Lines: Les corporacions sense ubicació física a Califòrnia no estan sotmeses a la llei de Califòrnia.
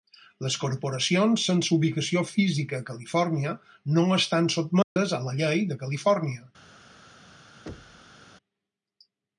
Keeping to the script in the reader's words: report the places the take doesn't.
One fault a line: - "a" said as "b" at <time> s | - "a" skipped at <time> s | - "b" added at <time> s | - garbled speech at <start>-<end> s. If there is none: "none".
none